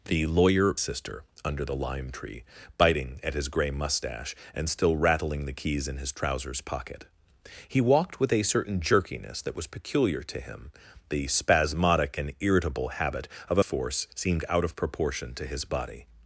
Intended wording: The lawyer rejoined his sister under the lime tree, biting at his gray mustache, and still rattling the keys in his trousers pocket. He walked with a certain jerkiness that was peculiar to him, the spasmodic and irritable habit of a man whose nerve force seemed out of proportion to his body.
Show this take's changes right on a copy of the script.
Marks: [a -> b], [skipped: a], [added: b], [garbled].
The lawyer [skipped: rejoined his] sister under the lime tree, biting at his gray mustache, and still rattling the keys in his trousers pocket. He walked with a certain jerkiness that was peculiar to him, the spasmodic and irritable habit of a [skipped: man whose nerve] force seemed out of proportion to his body.